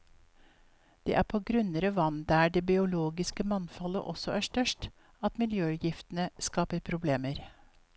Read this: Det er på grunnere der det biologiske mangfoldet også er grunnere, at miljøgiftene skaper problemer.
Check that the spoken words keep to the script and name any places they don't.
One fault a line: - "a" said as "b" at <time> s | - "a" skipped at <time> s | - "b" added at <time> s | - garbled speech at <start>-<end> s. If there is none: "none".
- "vann" added at 2.0 s
- "grunnere" said as "størst" at 4.5 s